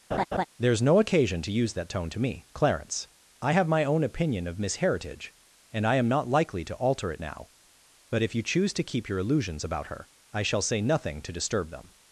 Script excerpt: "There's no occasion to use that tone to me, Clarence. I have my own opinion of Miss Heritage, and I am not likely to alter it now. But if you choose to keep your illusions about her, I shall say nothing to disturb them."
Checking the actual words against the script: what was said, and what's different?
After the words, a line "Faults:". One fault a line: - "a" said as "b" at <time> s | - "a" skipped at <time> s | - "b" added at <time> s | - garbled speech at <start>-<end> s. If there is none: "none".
"There's no occasion to use that tone to me, Clarence. I have my own opinion of Miss Heritage, and I am not likely to alter it now. But if you choose to keep your illusions about her, I shall say nothing to disturb them."
Faults:
none